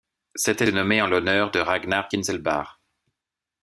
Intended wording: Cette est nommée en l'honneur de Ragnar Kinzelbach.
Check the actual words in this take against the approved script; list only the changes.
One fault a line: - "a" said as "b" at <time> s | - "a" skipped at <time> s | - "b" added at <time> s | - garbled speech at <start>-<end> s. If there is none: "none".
none